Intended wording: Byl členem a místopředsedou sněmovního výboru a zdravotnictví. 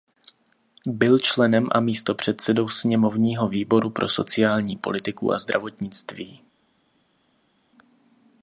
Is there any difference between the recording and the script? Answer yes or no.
yes